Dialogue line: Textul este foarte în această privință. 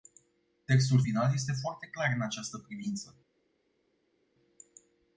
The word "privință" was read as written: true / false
true